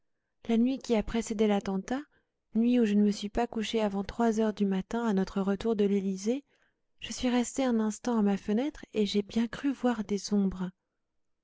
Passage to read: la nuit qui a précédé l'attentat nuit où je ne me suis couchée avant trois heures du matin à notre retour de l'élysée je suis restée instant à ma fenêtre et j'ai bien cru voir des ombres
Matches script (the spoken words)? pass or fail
fail